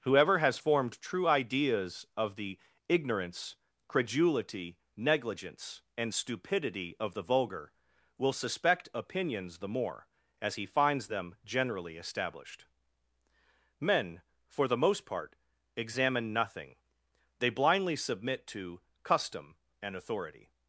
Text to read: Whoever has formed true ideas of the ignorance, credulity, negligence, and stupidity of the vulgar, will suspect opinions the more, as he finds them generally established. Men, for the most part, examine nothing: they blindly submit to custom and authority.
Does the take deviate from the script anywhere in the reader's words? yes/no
no